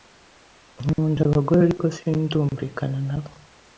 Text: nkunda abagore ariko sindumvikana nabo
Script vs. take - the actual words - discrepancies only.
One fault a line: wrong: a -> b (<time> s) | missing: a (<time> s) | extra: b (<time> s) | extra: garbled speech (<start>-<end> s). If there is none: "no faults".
no faults